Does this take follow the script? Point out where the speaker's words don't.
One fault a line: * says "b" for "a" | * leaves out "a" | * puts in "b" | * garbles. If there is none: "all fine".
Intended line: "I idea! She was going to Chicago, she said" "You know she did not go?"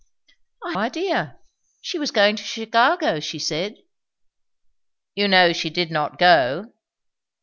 all fine